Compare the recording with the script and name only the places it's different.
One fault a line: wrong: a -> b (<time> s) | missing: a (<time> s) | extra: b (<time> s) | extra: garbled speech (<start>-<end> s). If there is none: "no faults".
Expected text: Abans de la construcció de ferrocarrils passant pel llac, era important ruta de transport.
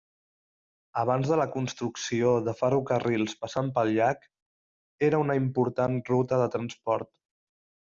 extra: una (5.3 s)